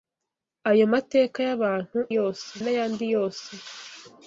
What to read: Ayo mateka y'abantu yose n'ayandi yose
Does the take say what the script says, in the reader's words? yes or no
yes